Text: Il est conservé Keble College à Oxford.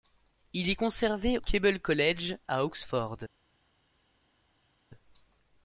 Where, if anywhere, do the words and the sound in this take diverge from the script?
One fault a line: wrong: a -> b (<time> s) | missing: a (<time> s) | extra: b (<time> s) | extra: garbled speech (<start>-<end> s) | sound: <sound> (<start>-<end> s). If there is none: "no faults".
no faults